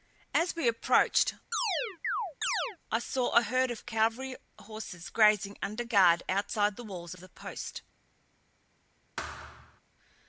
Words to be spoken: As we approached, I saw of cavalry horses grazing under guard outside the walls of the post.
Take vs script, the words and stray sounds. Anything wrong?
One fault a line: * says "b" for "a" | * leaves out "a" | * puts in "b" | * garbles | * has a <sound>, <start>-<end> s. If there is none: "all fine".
* has a chirp, 1.5-2.8 s
* puts in "a herd"
* has a thud, 9.2-9.8 s